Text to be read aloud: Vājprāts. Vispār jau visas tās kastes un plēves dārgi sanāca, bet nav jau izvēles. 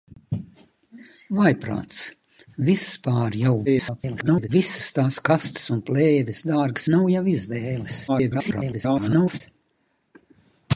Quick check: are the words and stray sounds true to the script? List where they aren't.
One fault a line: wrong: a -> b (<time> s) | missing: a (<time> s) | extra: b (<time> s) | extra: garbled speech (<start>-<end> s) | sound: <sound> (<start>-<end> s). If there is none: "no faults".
extra: garbled speech (3.7-4.5 s)
missing: sanāca bet (6.8 s)
extra: garbled speech (8.1-9.4 s)